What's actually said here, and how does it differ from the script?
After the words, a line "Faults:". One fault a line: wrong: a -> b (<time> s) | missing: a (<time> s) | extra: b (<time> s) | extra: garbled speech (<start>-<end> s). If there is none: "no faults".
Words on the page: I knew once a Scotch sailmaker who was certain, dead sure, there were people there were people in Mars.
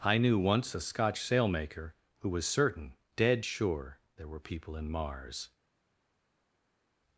I knew once a Scotch sailmaker who was certain, dead sure, there were people in Mars.
Faults:
missing: there were people (4.8 s)